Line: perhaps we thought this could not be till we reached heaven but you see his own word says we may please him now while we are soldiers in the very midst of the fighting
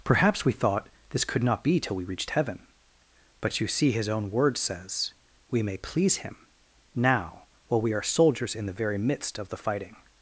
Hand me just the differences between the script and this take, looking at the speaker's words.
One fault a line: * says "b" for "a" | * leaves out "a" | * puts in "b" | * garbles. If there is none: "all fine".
all fine